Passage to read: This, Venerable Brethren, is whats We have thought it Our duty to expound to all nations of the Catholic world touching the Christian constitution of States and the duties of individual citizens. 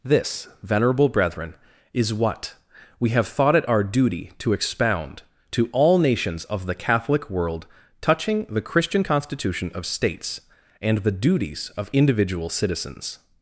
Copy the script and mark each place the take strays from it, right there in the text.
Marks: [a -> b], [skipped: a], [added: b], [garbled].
This, Venerable Brethren, is [whats -> what] We have thought it Our duty to expound to all nations of the Catholic world touching the Christian constitution of States and the duties of individual citizens.